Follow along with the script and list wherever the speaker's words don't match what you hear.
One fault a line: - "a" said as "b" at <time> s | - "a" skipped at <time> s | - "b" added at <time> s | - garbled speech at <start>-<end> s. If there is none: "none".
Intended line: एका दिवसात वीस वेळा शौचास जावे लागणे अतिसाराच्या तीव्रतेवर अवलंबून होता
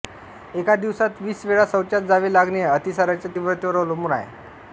- "होता" said as "आहे" at 4.1 s